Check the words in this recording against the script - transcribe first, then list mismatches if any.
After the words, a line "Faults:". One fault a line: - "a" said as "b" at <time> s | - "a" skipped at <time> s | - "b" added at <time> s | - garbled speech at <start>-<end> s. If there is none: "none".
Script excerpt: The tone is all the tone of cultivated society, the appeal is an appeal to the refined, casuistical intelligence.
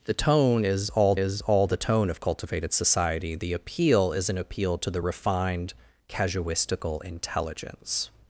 The tone is all is all the tone of cultivated society, the appeal is an appeal to the refined, casuistical intelligence.
Faults:
- "is all" added at 1.2 s